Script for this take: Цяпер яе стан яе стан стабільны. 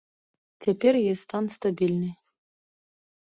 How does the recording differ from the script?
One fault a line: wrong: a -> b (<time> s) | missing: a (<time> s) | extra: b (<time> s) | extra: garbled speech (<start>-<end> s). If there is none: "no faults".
missing: яе стан (1.4 s)